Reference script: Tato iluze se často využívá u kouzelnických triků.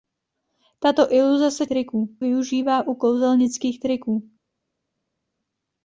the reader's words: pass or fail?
fail